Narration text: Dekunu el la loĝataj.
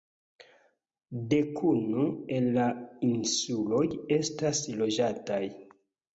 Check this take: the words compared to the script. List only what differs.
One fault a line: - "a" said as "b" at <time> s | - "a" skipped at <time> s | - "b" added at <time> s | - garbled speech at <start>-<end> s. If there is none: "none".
- "insuloj estas" added at 3.1 s